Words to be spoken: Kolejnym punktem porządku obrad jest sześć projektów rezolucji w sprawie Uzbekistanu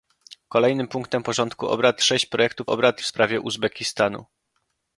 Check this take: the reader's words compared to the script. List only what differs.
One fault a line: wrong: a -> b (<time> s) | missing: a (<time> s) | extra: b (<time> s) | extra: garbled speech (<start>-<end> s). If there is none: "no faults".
missing: jest (2.0 s)
wrong: rezolucji -> obrad (2.7 s)